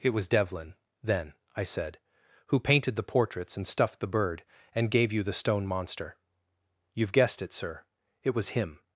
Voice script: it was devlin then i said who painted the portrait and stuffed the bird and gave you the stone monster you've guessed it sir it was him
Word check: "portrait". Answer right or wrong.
wrong